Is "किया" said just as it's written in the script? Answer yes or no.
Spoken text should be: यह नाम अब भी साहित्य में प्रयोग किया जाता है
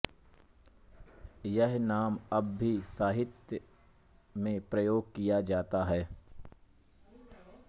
yes